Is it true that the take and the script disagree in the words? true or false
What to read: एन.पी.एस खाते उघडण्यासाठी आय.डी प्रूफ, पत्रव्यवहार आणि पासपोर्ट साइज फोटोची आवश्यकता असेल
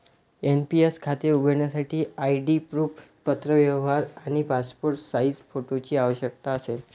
false